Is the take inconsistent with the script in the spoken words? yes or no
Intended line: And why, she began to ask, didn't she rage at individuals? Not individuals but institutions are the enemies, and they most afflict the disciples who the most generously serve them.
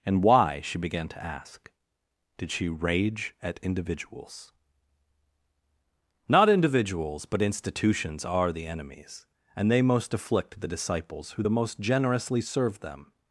yes